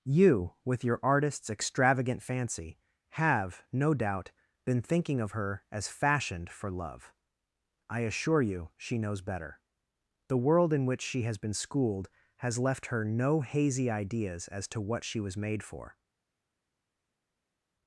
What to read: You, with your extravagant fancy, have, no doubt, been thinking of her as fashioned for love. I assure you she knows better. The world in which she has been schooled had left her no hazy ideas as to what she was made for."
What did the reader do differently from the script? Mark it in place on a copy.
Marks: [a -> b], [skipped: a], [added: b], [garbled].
You, with your [added: artist's] extravagant fancy, have, no doubt, been thinking of her as fashioned for love. I assure you she knows better. The world in which she has been schooled [had -> has] left her no hazy ideas as to what she was made for."